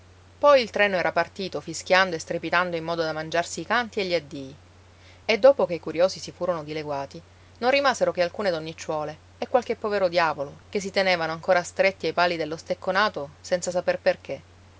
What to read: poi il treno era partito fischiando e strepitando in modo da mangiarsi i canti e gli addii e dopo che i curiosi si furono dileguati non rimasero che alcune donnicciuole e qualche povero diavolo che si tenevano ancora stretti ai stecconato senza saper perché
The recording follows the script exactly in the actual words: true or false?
false